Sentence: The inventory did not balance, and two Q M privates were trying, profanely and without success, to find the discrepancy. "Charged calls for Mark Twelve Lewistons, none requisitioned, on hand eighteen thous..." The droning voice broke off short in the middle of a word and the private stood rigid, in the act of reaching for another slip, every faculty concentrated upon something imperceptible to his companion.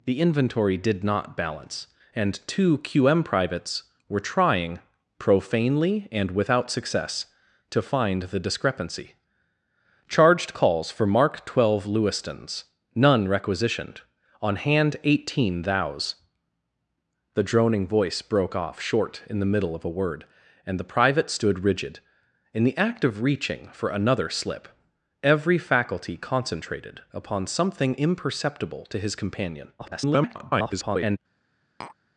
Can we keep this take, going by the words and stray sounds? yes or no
no